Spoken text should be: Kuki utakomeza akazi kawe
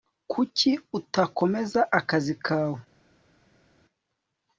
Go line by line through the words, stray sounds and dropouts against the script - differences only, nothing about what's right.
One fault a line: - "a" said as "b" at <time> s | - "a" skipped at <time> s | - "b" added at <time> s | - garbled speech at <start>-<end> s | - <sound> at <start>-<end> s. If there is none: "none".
none